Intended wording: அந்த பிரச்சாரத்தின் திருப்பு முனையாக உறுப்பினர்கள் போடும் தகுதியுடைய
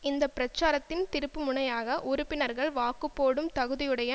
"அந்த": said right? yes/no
no